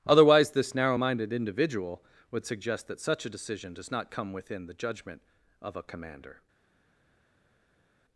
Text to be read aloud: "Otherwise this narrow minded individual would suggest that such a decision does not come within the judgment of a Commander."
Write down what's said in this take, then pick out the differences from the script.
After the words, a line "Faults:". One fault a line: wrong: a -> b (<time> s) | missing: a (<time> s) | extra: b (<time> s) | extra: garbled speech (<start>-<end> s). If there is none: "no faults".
"Otherwise this narrow minded individual would suggest that such a decision does not come within the judgment of a Commander."
Faults:
no faults